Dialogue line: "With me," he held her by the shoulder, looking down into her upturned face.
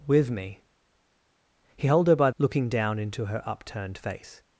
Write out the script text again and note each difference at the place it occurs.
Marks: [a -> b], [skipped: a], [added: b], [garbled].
"With me," he held her by [skipped: the shoulder,] looking down into her upturned face.